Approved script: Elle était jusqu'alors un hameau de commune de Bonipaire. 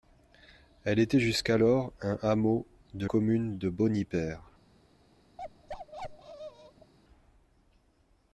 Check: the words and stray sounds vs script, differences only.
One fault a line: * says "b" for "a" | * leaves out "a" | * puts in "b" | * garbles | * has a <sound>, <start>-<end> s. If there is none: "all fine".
* has a bark, 5.4-6.9 s